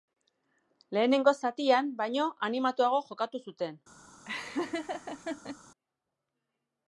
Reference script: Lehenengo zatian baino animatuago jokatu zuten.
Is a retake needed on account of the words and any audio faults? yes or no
yes